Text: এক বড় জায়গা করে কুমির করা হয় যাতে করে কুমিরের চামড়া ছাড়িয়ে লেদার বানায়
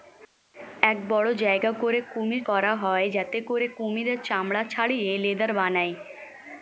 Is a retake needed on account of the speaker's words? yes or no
no